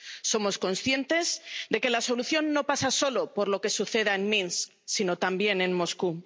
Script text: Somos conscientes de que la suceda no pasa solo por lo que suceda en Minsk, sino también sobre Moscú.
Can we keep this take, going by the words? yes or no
no